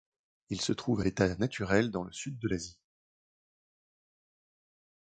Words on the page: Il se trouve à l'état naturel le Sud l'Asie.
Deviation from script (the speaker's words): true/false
true